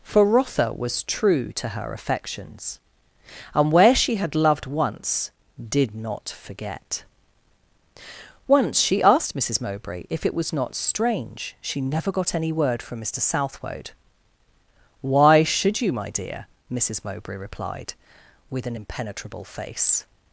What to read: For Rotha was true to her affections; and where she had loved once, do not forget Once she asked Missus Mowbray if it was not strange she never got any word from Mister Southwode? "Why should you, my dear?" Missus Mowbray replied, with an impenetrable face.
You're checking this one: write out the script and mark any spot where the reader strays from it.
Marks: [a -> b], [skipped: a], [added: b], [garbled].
For Rotha was true to her affections; and where she had loved once, [do -> did] not forget Once she asked Missus Mowbray if it was not strange she never got any word from Mister Southwode? "Why should you, my dear?" Missus Mowbray replied, with an impenetrable face.